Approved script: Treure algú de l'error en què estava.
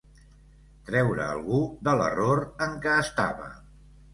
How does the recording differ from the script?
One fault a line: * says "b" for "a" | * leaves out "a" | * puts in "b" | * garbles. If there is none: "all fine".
all fine